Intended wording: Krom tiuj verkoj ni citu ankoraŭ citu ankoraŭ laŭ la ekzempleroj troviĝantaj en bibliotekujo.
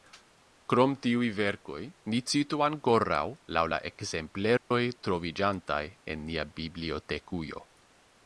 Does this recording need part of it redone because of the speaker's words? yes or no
yes